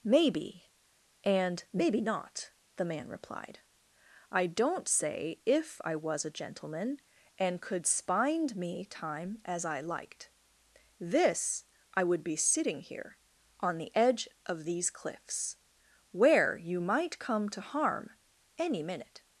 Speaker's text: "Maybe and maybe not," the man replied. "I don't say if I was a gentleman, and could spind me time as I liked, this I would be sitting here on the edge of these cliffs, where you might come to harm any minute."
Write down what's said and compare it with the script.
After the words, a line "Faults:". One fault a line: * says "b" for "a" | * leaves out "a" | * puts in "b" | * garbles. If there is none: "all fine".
"Maybe and maybe not," the man replied. "I don't say if I was a gentleman, and could spind me time as I liked, this I would be sitting here on the edge of these cliffs, where you might come to harm any minute."
Faults:
all fine